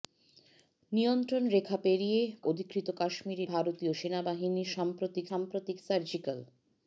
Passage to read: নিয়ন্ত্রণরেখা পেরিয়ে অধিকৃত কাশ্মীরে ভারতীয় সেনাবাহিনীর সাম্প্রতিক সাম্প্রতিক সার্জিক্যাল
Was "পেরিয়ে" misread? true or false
false